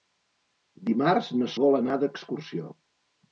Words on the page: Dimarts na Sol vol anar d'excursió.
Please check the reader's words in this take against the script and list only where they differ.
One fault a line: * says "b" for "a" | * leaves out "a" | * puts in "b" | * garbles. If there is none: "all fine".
* leaves out "Sol"